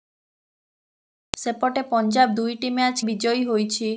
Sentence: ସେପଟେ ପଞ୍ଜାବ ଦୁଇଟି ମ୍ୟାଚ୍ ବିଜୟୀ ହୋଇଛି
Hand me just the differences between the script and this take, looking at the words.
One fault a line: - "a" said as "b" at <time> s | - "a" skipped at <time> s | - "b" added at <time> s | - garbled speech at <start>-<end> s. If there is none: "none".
none